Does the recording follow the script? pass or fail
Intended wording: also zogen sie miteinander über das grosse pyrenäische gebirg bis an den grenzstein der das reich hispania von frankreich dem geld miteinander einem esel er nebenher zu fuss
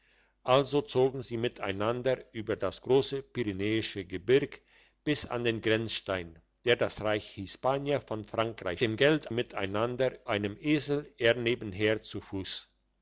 pass